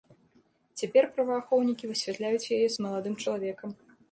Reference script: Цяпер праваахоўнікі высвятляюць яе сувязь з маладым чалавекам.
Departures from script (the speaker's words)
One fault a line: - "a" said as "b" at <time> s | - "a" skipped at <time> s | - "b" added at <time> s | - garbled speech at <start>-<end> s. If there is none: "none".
- "сувязь" skipped at 2.7 s